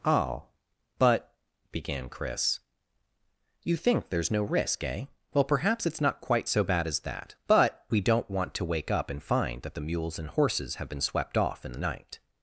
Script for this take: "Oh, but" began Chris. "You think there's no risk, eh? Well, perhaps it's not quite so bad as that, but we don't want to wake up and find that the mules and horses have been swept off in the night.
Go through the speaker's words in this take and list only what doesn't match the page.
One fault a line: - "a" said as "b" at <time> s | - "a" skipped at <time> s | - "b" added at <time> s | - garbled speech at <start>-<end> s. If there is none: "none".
none